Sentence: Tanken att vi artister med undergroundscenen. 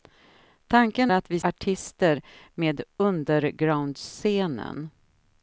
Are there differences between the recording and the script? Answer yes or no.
no